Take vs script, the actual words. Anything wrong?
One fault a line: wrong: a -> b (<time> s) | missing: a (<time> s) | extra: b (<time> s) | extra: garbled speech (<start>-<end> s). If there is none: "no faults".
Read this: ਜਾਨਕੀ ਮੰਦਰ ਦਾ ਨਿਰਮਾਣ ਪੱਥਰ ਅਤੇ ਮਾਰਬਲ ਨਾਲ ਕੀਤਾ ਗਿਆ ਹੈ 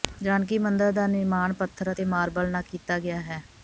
no faults